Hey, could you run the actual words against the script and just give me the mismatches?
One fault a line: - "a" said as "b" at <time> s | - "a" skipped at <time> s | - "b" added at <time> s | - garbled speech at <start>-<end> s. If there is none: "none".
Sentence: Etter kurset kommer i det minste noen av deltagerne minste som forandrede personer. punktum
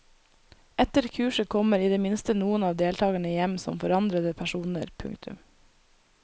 - "minste" said as "hjem" at 3.4 s